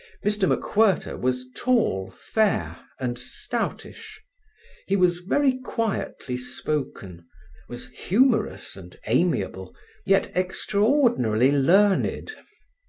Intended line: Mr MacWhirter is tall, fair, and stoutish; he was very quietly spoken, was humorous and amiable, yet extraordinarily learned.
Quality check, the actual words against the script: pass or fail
fail